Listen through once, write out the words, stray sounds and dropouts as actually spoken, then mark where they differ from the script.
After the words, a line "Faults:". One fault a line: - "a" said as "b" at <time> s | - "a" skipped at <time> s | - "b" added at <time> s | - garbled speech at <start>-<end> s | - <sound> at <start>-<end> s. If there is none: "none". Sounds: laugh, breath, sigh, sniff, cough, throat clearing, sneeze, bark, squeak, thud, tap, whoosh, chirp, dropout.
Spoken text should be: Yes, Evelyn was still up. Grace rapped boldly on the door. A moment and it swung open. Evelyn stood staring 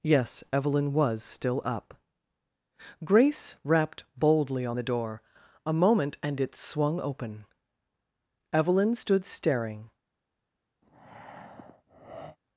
Yes, Evelyn was still up. Grace rapped boldly on the door. A moment and it swung open. Evelyn stood staring
Faults:
- breath at 10.8-12.4 s